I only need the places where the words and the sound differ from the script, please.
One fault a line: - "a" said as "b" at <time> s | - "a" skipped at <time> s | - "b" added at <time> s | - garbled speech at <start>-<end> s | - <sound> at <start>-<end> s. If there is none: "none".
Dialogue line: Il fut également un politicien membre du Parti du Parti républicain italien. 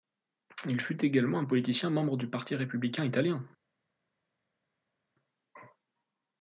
- "du Parti" skipped at 2.5 s